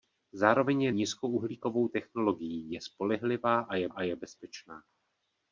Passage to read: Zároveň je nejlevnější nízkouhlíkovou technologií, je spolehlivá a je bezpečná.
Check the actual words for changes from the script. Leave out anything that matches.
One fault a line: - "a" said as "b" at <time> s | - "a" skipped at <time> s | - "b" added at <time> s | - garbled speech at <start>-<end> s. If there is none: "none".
- "nejlevnější" skipped at 0.9 s
- "a je" added at 3.9 s